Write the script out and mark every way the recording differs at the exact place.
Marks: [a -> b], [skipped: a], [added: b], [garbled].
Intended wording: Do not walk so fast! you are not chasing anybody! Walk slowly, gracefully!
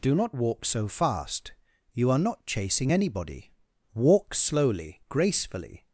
Do not walk so fast! you are not chasing anybody! Walk slowly, gracefully!